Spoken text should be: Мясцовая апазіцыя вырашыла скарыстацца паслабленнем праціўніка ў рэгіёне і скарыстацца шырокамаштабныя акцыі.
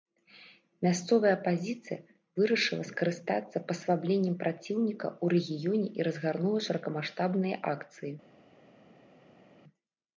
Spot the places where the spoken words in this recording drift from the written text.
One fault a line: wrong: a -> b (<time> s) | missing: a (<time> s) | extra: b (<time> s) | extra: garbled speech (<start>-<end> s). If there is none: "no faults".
wrong: скарыстацца -> разгарнула (6.1 s)